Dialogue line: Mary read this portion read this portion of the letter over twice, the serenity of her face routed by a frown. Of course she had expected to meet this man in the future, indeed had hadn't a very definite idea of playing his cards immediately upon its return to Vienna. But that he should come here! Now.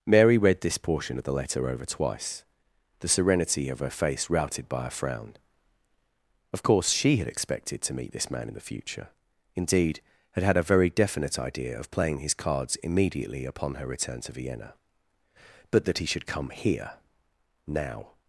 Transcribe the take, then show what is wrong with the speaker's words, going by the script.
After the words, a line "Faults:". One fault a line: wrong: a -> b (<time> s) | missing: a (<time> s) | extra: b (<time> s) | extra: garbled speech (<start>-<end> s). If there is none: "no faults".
Mary read this portion of the letter over twice, the serenity of her face routed by a frown. Of course she had expected to meet this man in the future, indeed had had a very definite idea of playing his cards immediately upon her return to Vienna. But that he should come here! Now.
Faults:
missing: read this portion (1.2 s)
wrong: hadn't -> had (10.4 s)
wrong: its -> her (13.7 s)